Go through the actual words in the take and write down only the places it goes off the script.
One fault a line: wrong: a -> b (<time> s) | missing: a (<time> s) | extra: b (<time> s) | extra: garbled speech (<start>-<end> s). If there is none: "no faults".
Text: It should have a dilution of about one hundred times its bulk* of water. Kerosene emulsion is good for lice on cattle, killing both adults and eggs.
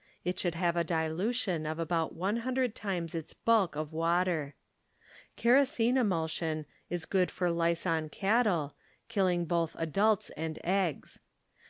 no faults